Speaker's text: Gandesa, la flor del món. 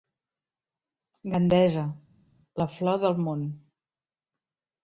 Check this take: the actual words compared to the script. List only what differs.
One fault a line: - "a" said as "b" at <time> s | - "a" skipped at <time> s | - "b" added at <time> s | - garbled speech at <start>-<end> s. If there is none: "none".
none